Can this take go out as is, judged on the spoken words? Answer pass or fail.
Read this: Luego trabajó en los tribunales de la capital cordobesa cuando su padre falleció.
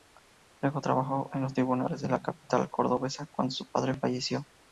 pass